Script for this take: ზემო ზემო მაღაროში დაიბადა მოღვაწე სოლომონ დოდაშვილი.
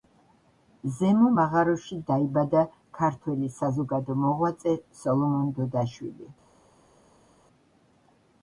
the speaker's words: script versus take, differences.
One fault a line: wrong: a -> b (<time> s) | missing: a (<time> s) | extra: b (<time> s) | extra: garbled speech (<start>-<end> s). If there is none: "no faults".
missing: ზემო (1.3 s)
extra: ქართველი საზოგადო (3.0 s)